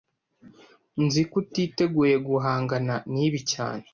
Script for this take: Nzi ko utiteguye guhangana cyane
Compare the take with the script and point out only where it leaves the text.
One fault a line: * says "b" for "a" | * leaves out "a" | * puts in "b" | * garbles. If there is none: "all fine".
* puts in "nibi"